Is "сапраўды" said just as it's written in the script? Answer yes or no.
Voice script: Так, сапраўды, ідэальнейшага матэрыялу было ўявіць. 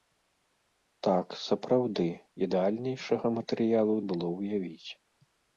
yes